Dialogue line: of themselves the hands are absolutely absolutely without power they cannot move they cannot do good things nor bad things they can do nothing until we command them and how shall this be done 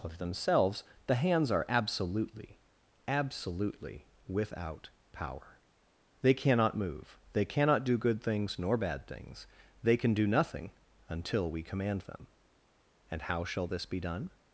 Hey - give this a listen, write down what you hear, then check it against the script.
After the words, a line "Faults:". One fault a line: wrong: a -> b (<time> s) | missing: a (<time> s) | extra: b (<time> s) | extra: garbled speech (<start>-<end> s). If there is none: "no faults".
of themselves the hands are absolutely absolutely without power they cannot move they cannot do good things nor bad things they can do nothing until we command them and how shall this be done
Faults:
no faults